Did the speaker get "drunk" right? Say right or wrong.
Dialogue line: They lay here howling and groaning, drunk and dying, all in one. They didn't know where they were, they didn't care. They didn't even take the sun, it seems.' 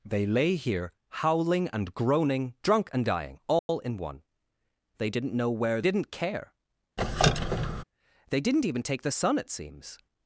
right